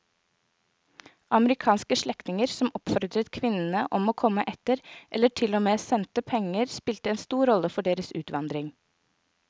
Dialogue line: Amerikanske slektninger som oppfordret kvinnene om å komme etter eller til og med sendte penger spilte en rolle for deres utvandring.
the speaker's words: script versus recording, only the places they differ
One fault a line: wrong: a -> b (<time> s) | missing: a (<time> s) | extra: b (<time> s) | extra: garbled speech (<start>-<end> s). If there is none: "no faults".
extra: stor (7.2 s)